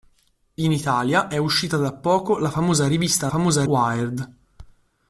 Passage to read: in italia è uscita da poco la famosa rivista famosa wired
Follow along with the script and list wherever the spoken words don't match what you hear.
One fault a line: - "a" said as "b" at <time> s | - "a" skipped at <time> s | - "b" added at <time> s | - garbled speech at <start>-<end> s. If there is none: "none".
none